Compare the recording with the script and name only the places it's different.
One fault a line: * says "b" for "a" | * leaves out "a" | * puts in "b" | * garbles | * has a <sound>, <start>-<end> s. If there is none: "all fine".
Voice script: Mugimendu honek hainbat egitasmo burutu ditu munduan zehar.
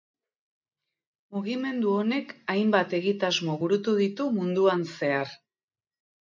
all fine